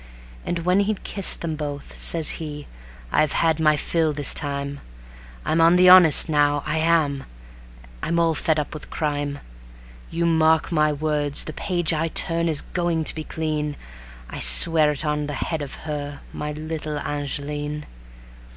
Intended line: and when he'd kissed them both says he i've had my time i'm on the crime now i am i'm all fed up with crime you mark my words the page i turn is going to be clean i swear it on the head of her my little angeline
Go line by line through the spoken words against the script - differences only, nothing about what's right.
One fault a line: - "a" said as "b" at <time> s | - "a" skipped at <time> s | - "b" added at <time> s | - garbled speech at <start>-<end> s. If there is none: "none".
- "fill this" added at 3.8 s
- "crime" said as "honest" at 5.9 s